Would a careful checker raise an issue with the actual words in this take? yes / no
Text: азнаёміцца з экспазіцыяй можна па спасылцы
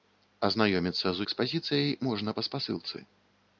no